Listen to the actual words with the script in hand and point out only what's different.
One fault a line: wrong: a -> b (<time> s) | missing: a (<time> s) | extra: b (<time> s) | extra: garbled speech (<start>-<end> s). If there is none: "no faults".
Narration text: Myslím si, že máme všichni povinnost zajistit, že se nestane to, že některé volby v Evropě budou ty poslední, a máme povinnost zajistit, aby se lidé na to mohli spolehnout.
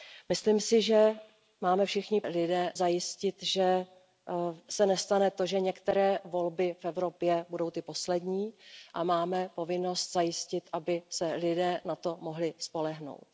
wrong: povinnost -> lidé (2.3 s)